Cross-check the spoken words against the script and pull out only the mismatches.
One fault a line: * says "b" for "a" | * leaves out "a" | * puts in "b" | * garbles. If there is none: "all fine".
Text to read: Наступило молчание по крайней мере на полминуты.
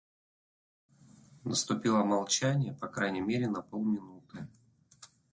all fine